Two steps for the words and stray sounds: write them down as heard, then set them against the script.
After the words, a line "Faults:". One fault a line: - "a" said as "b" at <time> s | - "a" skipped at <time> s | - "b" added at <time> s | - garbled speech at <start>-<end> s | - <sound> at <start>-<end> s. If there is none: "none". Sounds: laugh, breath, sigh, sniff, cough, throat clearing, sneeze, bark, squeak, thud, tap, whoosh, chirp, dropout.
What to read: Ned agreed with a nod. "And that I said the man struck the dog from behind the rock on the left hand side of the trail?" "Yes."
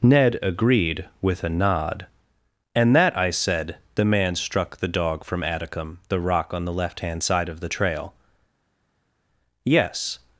Ned agreed with a nod. "And that I said the man struck the dog from atticum the rock on the left hand side of the trail?" "Yes."
Faults:
- "behind" said as "atticum" at 5.4 s